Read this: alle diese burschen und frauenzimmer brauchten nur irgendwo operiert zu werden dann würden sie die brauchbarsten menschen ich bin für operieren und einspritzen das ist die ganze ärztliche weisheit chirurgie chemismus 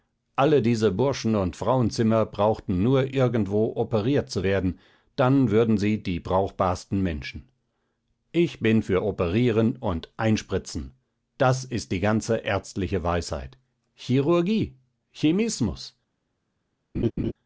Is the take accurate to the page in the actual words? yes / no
yes